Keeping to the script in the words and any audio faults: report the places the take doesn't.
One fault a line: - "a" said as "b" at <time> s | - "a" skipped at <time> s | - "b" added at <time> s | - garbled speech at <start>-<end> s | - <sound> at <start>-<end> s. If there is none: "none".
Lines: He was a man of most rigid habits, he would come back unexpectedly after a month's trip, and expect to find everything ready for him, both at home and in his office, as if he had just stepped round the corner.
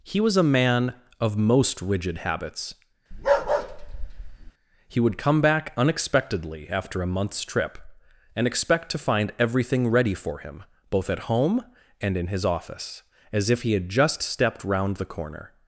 - bark at 3.1-4.5 s